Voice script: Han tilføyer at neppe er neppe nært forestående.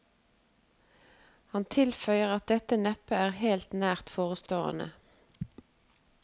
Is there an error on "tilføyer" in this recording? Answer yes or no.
no